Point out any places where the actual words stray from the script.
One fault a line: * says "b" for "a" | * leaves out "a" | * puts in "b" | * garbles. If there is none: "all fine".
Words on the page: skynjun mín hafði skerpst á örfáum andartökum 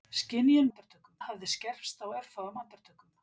* says "andartökum" for "mín"